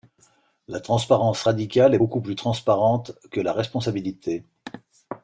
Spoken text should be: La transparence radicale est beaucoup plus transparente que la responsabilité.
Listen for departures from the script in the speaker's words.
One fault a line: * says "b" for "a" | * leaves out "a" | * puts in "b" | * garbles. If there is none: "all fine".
all fine